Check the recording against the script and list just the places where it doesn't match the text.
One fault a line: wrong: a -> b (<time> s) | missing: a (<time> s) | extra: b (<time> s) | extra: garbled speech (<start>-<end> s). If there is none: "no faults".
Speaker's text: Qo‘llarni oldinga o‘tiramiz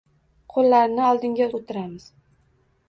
no faults